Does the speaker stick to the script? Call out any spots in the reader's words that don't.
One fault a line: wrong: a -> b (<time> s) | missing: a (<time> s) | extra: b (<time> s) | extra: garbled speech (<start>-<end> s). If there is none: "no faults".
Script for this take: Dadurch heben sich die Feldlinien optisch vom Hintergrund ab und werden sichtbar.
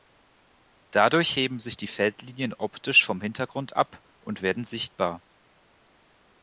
no faults